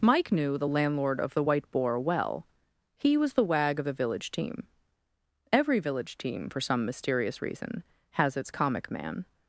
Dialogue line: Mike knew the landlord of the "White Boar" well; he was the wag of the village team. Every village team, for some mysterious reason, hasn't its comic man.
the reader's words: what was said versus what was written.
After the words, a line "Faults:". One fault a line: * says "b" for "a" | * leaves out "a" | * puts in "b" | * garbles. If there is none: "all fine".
Mike knew the landlord of the "White Boar" well; he was the wag of the village team. Every village team, for some mysterious reason, has its comic man.
Faults:
* says "has" for "hasn't"